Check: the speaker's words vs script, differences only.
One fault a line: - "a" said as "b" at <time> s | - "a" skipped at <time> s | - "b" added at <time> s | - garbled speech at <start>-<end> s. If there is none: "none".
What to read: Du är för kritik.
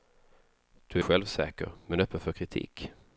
- "självsäker men öppen" added at 1.0 s